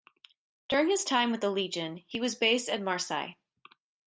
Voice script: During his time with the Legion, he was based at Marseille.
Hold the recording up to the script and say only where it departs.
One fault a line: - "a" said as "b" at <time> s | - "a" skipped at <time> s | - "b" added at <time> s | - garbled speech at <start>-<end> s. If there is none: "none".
none